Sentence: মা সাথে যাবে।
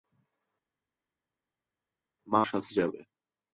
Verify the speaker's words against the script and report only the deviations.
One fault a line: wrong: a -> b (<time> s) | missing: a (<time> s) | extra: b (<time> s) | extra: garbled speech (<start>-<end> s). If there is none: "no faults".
no faults